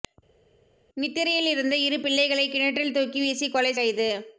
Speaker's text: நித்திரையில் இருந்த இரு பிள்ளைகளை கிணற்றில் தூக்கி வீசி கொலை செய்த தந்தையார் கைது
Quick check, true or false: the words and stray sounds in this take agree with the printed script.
false